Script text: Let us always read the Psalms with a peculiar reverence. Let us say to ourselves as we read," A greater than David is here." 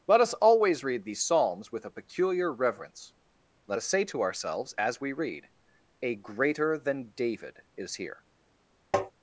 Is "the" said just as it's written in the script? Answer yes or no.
no